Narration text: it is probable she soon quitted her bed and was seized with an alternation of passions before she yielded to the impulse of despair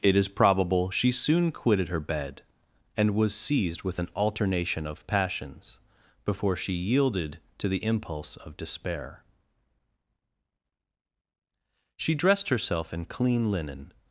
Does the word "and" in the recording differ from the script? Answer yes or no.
no